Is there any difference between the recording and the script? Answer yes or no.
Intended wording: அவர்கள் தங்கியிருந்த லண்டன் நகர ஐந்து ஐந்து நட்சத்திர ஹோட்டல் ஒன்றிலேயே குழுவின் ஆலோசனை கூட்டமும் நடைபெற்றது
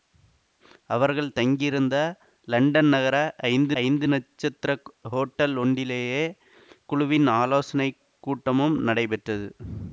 no